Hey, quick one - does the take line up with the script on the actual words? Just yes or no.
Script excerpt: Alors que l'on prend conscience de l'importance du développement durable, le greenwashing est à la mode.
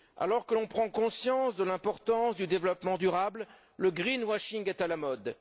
yes